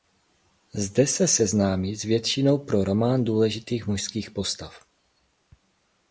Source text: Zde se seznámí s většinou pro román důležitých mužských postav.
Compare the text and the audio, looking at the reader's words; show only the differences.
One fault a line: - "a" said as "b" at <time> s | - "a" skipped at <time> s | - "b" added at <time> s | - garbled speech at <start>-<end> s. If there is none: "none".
none